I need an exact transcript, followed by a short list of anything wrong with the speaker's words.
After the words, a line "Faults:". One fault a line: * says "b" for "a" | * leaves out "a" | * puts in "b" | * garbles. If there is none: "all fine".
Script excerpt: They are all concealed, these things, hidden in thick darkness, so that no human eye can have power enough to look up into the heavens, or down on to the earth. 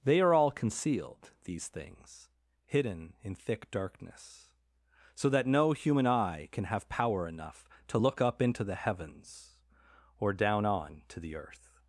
They are all concealed, these things, hidden in thick darkness, so that no human eye can have power enough to look up into the heavens, or down on to the earth.
Faults:
all fine